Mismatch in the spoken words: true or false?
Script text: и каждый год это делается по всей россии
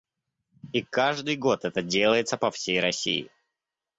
false